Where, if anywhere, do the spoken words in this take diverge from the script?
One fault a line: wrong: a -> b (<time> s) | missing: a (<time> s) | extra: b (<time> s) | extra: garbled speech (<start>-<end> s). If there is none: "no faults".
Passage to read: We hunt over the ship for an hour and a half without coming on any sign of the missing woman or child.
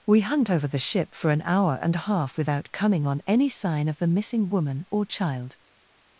no faults